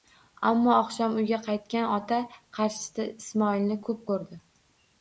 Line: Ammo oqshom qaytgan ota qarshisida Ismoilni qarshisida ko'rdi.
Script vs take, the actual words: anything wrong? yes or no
yes